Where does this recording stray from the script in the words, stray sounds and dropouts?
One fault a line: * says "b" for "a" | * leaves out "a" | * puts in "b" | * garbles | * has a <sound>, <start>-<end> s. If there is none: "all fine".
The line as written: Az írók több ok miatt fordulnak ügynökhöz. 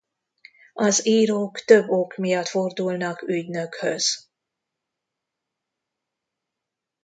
all fine